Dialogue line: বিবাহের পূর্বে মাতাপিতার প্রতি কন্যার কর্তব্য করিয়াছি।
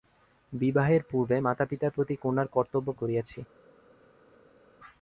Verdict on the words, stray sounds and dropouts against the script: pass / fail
pass